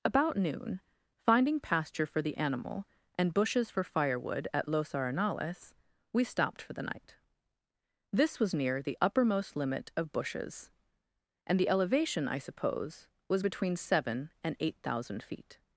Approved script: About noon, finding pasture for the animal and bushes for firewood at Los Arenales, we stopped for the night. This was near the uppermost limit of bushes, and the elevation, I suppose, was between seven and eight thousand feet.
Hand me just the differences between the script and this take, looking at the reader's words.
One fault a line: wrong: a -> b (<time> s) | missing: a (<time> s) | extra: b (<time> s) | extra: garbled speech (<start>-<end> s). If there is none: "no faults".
no faults